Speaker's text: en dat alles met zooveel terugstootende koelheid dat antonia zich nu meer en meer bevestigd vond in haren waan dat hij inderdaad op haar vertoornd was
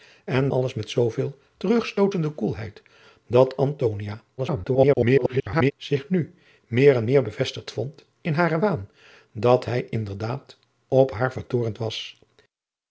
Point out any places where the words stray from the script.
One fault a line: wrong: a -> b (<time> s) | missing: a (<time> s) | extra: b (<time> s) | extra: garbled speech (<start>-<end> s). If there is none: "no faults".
missing: dat (0.5 s)
extra: garbled speech (4.4-5.7 s)